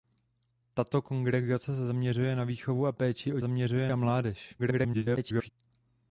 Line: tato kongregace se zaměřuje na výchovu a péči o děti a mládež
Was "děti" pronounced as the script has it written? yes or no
no